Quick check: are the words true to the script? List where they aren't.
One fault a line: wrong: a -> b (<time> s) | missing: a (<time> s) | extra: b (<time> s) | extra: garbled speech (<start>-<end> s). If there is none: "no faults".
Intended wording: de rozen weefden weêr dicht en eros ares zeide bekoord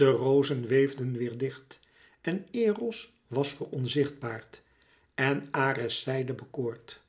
extra: was veronzichtbaard en (3.3 s)